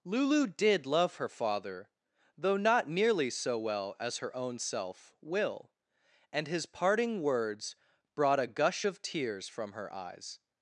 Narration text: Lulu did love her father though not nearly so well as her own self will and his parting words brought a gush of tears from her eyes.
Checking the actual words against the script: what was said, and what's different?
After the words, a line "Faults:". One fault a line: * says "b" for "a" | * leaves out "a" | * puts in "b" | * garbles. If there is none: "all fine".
Lulu did love her father though not nearly so well as her own self will and his parting words brought a gush of tears from her eyes.
Faults:
all fine